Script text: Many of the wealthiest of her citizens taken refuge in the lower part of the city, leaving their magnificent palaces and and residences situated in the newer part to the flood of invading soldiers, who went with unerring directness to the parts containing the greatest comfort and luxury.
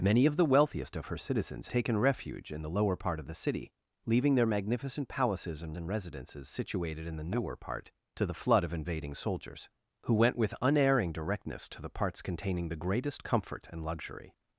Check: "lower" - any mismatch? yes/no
no